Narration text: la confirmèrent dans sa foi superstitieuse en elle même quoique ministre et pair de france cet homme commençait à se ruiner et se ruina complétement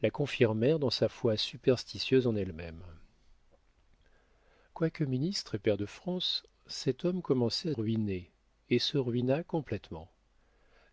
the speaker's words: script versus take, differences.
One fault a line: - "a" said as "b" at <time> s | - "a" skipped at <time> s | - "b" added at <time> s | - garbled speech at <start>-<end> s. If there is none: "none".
- "se" skipped at 7.8 s